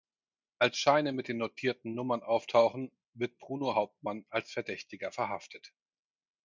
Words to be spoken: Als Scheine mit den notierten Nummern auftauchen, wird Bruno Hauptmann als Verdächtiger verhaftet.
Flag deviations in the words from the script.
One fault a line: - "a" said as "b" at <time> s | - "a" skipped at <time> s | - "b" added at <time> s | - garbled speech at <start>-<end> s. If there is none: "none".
none